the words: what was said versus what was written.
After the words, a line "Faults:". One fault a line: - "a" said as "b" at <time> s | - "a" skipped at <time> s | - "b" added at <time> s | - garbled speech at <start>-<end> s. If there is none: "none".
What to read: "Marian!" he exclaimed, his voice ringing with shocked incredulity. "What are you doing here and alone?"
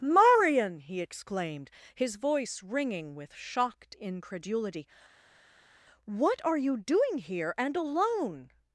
"Marian!" he exclaimed, his voice ringing with shocked incredulity. "What are you doing here and alone?"
Faults:
none